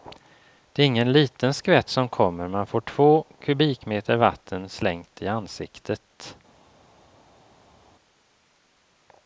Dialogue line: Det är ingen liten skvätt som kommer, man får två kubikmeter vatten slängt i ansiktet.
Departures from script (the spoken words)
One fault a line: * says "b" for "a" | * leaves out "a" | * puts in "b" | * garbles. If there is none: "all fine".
all fine